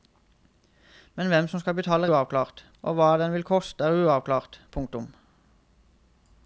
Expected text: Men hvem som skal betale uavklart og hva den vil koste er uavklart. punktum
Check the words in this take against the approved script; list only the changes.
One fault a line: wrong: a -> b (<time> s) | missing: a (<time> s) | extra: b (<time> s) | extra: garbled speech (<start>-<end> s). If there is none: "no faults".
no faults